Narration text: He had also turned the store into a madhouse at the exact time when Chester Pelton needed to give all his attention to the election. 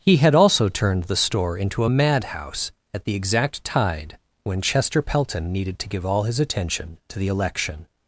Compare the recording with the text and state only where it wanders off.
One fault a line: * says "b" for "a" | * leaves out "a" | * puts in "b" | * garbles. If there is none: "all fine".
* says "tide" for "time"